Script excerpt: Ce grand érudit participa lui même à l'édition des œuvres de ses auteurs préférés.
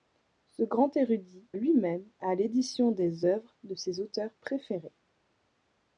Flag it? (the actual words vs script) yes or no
yes